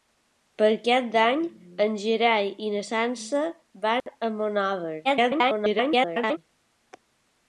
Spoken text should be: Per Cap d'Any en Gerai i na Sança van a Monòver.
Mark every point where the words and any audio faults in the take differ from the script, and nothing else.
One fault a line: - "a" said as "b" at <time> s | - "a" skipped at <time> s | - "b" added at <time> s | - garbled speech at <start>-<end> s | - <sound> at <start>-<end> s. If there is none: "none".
- dropout at 4.0-4.1 s
- garbled speech at 5.0-6.4 s